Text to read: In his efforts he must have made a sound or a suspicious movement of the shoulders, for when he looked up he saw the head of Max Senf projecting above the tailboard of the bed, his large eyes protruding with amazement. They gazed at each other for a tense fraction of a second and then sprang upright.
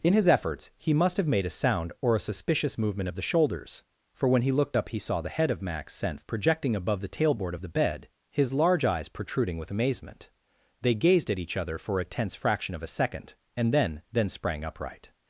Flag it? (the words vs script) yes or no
yes